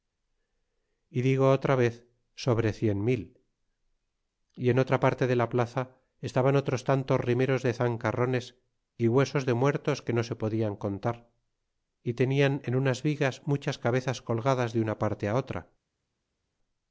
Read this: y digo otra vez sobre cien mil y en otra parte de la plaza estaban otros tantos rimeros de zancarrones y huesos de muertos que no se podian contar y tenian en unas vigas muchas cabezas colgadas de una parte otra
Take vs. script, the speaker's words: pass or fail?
pass